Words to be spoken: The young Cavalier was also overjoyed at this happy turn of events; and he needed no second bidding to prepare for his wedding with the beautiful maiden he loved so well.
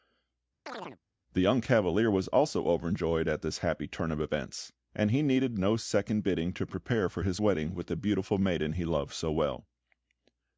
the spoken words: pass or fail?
pass